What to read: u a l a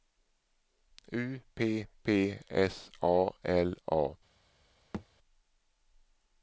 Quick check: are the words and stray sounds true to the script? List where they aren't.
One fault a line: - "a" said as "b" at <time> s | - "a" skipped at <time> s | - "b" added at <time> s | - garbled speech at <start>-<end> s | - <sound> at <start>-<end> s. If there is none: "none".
- "p p s" added at 1.5 s
- thud at 4.9-5.1 s